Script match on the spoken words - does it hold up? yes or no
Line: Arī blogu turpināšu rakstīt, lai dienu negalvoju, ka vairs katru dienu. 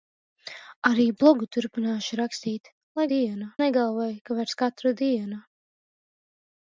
yes